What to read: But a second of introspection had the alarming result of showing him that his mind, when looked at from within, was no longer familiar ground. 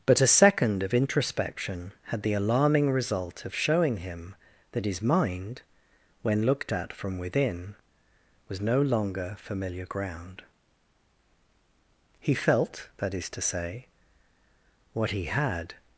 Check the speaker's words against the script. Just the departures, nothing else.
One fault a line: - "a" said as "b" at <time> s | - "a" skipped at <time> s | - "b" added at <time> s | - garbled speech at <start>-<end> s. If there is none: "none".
- "He felt that is to say what he had" added at 12.2 s